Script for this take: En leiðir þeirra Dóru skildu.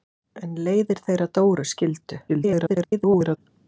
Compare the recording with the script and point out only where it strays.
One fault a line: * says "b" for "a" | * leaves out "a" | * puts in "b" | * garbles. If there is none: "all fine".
* garbles